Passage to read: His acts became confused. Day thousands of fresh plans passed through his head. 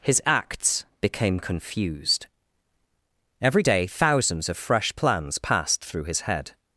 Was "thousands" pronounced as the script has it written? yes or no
yes